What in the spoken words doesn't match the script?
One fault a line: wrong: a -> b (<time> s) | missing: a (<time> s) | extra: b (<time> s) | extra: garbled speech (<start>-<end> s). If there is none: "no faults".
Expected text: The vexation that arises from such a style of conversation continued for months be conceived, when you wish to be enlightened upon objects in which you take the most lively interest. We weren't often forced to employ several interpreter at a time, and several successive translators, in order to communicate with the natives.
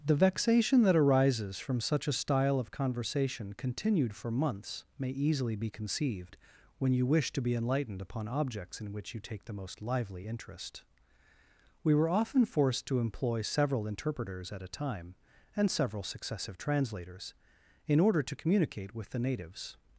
extra: may easily (5.0 s)
wrong: weren't -> were (11.9 s)
wrong: interpreter -> interpreters (13.9 s)